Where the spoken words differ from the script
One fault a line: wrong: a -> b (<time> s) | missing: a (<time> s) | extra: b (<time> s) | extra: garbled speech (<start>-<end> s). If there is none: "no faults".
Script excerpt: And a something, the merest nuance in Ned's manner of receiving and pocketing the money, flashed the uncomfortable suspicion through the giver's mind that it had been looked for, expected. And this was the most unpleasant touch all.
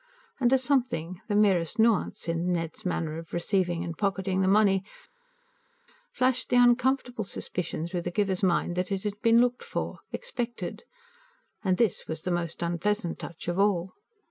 extra: of (13.5 s)